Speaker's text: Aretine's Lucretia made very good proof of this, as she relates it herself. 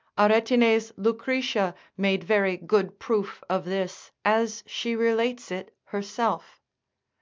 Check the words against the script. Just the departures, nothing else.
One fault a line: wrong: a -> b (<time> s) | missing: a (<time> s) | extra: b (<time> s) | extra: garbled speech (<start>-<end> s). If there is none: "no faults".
no faults